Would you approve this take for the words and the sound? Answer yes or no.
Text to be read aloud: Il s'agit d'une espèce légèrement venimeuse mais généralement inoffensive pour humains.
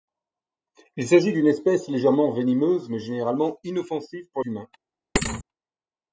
no